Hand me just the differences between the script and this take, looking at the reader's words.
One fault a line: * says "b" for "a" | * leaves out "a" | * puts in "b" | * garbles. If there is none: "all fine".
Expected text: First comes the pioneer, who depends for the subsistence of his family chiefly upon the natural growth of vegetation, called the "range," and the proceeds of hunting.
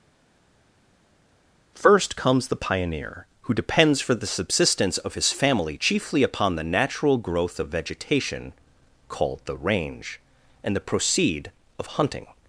* says "proceed" for "proceeds"